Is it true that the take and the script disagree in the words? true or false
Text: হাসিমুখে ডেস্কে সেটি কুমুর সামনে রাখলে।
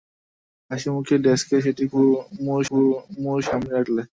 true